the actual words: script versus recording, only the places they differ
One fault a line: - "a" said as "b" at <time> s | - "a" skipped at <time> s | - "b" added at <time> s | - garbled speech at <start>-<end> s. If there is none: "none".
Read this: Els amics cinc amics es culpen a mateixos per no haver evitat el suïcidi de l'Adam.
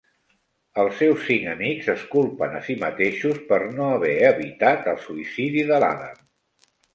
- "amics" said as "seus" at 1.0 s
- "si" added at 2.7 s